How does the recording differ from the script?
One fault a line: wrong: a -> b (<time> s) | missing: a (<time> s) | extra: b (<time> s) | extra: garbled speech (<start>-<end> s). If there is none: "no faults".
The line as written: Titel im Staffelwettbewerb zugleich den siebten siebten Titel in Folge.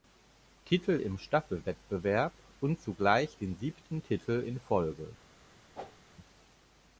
extra: und (2.6 s)
missing: siebten (4.0 s)